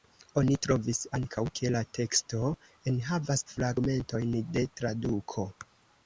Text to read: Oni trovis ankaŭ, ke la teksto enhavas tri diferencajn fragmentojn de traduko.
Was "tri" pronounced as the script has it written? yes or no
no